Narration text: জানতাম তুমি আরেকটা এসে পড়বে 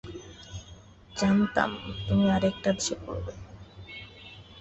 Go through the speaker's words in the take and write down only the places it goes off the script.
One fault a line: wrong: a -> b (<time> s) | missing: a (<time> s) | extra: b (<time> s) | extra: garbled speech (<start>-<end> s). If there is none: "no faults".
no faults